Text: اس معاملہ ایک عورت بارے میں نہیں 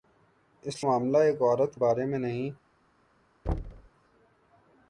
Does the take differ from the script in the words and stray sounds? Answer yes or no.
yes